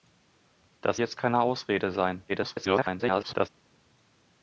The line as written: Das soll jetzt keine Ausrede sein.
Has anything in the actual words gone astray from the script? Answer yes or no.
yes